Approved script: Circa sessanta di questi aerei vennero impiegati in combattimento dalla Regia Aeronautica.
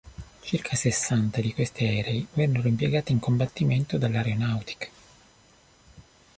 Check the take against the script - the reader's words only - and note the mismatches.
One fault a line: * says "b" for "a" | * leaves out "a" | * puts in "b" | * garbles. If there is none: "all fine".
* leaves out "Regia"